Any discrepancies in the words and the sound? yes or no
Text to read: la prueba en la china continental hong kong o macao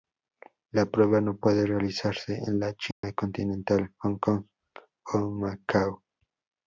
yes